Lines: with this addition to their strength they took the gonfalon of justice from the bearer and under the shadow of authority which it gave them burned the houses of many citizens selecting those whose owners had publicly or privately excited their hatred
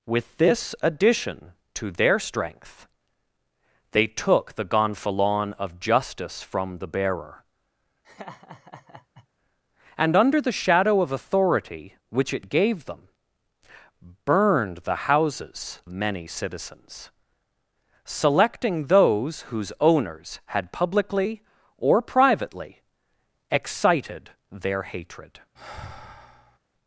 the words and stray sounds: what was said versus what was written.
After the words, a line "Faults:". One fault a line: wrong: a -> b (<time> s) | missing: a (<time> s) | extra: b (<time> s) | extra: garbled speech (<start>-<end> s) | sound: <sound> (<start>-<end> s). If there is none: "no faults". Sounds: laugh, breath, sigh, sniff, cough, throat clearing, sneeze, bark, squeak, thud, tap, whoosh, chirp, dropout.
with this addition to their strength they took the gonfalon of justice from the bearer and under the shadow of authority which it gave them burned the houses many citizens selecting those whose owners had publicly or privately excited their hatred
Faults:
sound: laugh (8.0-9.3 s)
missing: of (15.8 s)
sound: sigh (25.5-26.6 s)